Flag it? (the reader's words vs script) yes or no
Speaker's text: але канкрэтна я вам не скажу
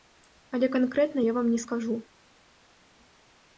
no